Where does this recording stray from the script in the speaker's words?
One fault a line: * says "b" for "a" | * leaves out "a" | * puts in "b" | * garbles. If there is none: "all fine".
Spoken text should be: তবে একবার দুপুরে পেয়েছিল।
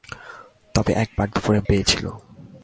all fine